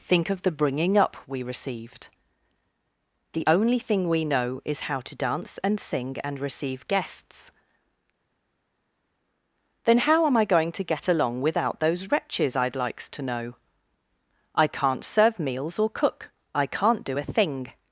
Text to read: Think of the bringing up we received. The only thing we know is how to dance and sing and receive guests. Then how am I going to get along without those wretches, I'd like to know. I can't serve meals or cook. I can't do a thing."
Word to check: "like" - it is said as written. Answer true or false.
false